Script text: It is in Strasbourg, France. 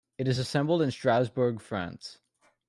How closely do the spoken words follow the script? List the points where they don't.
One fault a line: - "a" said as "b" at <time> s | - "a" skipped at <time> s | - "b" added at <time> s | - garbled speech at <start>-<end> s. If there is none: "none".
- "assembled" added at 0.4 s